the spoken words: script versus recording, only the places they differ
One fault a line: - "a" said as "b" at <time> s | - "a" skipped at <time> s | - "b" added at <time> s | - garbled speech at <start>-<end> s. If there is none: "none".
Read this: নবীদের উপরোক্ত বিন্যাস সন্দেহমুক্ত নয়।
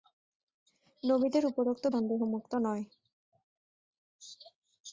- "বিন্যাস" skipped at 1.9 s